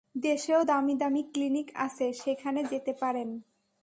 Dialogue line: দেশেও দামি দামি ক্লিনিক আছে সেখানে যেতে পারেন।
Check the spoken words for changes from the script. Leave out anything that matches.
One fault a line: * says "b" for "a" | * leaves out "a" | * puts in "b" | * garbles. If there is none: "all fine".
all fine